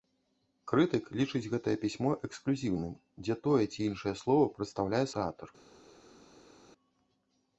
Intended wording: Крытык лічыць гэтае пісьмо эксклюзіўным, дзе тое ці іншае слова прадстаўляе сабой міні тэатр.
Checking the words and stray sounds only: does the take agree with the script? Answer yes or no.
no